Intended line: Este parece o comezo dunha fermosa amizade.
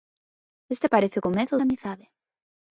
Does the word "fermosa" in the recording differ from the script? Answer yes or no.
yes